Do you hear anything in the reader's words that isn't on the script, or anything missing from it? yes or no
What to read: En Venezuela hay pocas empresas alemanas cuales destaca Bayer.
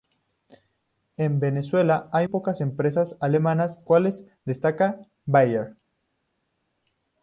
no